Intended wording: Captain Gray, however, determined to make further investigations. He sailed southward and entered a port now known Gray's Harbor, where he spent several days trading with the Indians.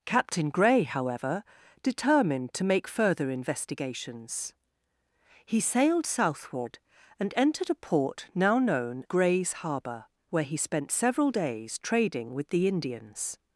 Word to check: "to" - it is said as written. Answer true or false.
true